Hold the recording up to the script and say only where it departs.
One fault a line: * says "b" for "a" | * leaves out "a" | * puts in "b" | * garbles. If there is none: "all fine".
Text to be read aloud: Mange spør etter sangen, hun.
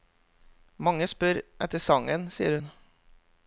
* puts in "sier"